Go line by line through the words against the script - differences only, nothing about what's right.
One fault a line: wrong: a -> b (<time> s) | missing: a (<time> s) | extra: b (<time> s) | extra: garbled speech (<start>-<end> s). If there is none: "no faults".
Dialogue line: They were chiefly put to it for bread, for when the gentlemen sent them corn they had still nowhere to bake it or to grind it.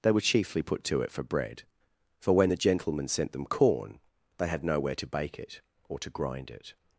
missing: still (4.6 s)